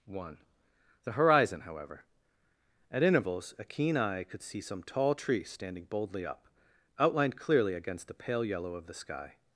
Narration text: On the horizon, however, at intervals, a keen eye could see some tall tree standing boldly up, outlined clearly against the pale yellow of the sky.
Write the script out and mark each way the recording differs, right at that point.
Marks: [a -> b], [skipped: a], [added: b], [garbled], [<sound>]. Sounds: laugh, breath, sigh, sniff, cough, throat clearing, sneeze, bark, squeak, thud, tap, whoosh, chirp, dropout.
[On -> One] the horizon, however, at intervals, a keen eye could see some tall tree standing boldly up, outlined clearly against the pale yellow of the sky.